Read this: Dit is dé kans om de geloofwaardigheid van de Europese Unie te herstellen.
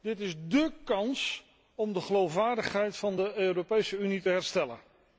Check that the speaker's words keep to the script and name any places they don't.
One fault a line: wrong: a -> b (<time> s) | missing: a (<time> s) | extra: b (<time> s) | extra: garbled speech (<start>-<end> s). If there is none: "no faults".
no faults